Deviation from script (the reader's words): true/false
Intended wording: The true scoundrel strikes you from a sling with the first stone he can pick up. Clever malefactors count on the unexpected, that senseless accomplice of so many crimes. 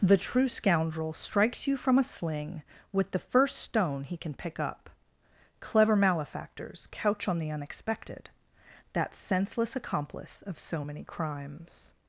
true